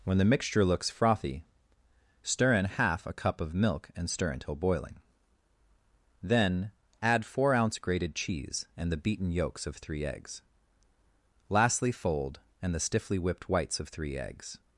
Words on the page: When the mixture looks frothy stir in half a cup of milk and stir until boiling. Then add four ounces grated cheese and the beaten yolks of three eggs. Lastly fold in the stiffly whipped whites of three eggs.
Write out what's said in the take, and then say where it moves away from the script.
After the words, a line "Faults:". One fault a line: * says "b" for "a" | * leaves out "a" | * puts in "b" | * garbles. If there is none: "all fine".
When the mixture looks frothy stir in half a cup of milk and stir until boiling. Then add four ounce grated cheese and the beaten yolks of three eggs. Lastly fold and the stiffly whipped whites of three eggs.
Faults:
* says "ounce" for "ounces"
* says "and" for "in"